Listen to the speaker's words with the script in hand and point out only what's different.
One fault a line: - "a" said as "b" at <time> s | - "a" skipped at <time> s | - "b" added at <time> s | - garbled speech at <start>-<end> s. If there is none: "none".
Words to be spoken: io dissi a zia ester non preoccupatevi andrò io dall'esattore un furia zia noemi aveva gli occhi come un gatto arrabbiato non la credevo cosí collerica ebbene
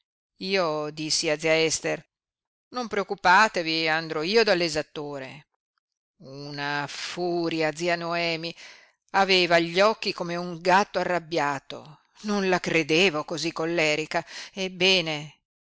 - "un" said as "una" at 6.2 s